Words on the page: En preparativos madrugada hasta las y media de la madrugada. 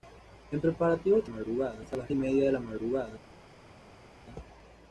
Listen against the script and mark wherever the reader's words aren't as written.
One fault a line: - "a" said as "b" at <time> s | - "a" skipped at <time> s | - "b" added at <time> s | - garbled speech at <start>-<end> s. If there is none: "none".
none